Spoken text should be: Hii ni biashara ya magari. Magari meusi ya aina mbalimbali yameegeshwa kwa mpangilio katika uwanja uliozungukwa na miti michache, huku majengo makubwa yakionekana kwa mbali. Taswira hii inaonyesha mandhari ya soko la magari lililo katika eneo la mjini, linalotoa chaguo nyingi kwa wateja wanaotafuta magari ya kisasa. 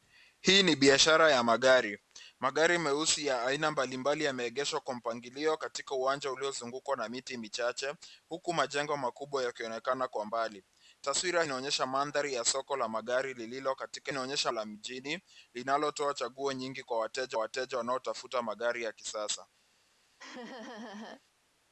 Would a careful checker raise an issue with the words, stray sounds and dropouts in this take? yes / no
yes